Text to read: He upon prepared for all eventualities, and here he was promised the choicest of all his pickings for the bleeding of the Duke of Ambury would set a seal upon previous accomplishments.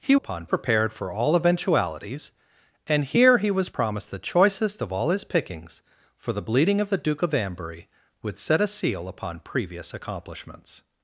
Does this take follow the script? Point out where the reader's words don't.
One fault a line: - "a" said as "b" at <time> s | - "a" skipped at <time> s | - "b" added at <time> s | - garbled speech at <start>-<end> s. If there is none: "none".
none